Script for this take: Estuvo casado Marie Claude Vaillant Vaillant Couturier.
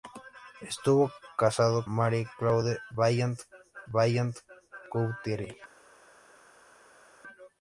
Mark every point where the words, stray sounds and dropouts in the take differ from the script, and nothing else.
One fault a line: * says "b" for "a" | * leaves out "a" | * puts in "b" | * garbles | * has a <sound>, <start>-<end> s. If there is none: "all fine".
all fine